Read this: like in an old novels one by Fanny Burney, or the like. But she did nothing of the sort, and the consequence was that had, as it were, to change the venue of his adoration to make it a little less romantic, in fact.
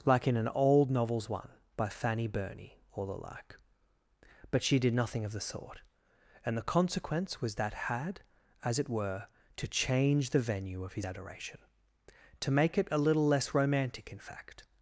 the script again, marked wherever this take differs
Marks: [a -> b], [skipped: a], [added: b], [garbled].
like in an old novels one by Fanny Burney, or the like. But she did nothing of the sort, and the consequence was that had, as it were, to change the venue of his adoration to make it a little less romantic, in fact.